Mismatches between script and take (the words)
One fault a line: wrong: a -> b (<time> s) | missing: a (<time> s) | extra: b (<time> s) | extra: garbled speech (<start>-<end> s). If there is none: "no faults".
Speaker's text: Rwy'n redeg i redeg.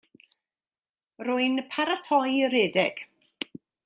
wrong: redeg -> paratoi (1.8 s)